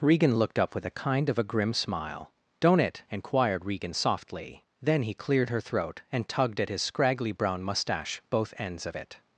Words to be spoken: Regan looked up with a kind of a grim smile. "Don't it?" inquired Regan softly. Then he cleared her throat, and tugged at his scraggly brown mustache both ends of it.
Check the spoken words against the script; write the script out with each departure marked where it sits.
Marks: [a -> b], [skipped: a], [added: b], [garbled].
Regan looked up with a kind of a grim smile. "Don't it?" inquired Regan softly. Then he cleared her throat, and tugged at his scraggly brown mustache both ends of it.